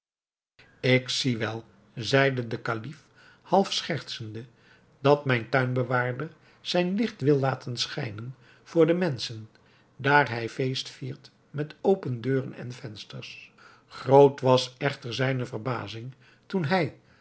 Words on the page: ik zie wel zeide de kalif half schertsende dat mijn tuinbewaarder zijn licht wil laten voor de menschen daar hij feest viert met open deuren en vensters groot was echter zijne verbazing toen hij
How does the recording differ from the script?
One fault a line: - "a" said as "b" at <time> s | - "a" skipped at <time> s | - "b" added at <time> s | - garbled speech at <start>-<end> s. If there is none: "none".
- "schijnen" added at 7.8 s